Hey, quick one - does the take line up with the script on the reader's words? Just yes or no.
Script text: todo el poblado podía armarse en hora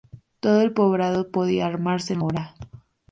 yes